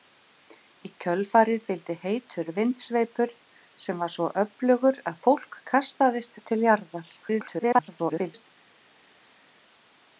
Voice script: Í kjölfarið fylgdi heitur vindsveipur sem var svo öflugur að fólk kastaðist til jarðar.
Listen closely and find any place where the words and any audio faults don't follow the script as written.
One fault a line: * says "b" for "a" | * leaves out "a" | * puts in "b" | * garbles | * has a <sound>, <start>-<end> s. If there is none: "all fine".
* garbles